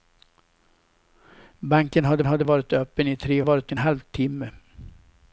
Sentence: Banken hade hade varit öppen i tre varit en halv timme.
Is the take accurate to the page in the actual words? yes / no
yes